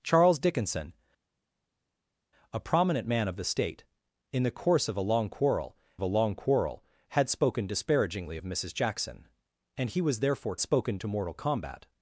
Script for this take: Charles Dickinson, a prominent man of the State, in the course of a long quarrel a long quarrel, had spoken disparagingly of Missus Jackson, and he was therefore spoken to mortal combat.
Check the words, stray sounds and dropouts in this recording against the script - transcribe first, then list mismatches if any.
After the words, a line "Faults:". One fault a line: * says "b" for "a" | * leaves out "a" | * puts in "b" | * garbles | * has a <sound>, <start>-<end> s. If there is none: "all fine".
Charles Dickinson, a prominent man of the State, in the course of a long quarrel a long quarrel, had spoken disparagingly of Missus Jackson, and he was therefore spoken to mortal combat.
Faults:
all fine